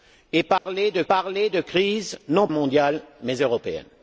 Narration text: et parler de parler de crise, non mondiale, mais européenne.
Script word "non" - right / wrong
right